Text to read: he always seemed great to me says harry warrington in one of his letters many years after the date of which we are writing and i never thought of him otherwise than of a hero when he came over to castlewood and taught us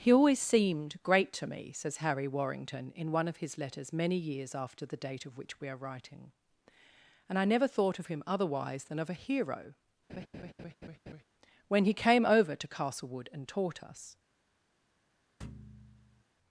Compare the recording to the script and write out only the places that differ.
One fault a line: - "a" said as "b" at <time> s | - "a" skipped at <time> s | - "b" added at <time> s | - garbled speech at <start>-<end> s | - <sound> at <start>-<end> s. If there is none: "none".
- laugh at 10.1-11.2 s
- thud at 15.4-16.2 s